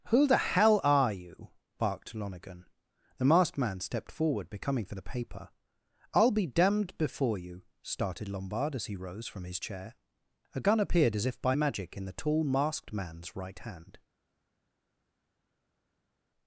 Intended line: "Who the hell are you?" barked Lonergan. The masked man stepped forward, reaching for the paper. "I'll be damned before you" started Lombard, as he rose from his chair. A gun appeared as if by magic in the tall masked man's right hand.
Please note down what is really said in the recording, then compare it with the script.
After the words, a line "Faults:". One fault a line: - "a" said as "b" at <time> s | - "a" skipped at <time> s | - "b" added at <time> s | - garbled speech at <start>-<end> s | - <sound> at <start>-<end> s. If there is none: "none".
"Who the hell are you?" barked Lonergan. The masked man stepped forward, becoming for the paper. "I'll be damned before you" started Lombard, as he rose from his chair. A gun appeared as if by magic in the tall masked man's right hand.
Faults:
- "reaching" said as "becoming" at 4.5 s